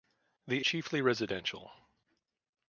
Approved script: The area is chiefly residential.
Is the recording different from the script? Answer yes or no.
yes